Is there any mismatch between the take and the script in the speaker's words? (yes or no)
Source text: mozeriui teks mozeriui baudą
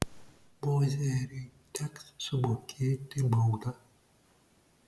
yes